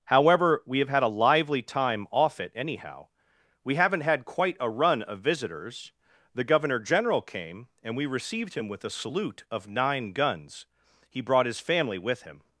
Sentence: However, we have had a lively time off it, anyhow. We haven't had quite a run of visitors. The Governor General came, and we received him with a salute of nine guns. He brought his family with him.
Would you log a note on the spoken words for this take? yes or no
no